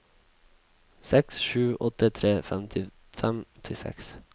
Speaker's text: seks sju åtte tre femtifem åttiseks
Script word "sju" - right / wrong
right